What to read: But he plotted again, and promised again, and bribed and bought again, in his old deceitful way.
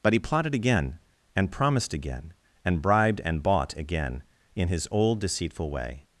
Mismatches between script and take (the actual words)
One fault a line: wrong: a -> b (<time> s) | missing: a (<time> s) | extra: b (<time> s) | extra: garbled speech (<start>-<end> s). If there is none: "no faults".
no faults